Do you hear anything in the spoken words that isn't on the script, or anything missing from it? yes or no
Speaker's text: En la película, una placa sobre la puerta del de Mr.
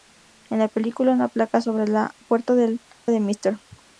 no